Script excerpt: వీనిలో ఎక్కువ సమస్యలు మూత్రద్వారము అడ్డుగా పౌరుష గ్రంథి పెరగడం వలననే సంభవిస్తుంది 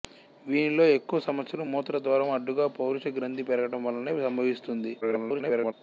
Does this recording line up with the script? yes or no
no